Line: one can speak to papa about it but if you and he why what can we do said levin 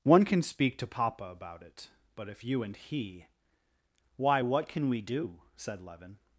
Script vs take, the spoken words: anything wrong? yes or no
no